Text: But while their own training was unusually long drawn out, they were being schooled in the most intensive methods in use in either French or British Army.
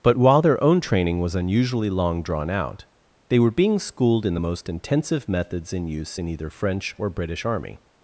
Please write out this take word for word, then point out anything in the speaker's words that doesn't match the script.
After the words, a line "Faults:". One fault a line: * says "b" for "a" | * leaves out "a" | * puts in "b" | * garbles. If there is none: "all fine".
But while their own training was unusually long drawn out, they were being schooled in the most intensive methods in use in either French or British Army.
Faults:
all fine